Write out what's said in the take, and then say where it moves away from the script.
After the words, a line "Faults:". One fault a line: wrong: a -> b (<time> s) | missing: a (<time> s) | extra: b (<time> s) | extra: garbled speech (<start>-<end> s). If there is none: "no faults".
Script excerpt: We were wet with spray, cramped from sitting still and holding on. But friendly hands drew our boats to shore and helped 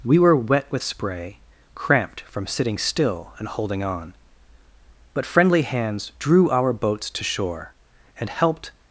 We were wet with spray, cramped from sitting still and holding on. But friendly hands drew our boats to shore and helped
Faults:
no faults